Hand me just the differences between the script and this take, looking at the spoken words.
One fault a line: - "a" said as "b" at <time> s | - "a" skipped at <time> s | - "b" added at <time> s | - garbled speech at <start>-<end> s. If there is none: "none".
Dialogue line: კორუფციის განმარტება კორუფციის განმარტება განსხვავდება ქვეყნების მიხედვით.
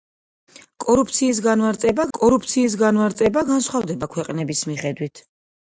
none